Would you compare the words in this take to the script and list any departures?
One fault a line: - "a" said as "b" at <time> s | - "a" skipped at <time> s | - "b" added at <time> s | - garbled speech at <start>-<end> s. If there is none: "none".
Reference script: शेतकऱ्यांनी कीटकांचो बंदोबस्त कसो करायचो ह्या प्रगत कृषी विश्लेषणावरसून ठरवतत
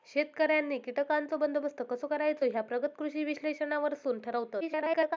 - garbled speech at 4.6-5.2 s